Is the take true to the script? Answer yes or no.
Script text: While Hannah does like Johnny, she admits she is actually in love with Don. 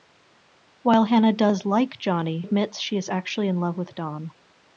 no